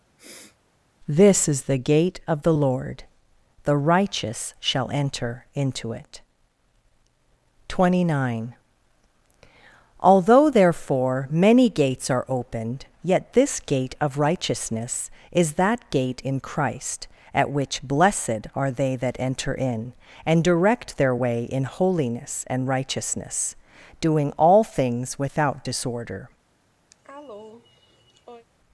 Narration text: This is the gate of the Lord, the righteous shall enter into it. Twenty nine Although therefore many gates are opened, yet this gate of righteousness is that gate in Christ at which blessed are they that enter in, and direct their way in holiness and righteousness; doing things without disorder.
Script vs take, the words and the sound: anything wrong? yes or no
yes